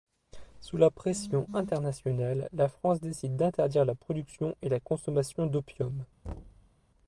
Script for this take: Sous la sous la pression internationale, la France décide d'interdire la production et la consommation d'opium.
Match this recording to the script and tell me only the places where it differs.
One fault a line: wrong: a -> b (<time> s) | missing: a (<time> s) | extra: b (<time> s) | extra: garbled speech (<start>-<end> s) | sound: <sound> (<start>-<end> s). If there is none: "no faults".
missing: sous la (0.9 s)
sound: thud (6.2-6.7 s)